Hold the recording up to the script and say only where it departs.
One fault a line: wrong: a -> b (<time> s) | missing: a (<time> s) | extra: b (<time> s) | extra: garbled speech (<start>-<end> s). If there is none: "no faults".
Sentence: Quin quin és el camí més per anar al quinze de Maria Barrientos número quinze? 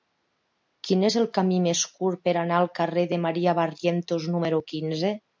missing: quin (1.0 s)
extra: curt (2.0 s)
wrong: quinze -> carrer (2.8 s)